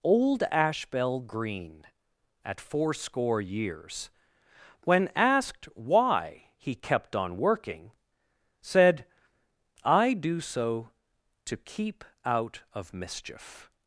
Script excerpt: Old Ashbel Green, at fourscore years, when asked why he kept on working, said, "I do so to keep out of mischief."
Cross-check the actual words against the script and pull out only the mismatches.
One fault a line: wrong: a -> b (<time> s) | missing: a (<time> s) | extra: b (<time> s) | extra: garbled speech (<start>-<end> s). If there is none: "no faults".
no faults